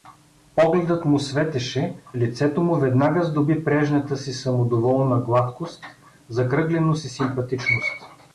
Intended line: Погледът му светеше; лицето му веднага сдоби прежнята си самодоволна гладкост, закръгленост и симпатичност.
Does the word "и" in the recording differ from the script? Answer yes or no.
no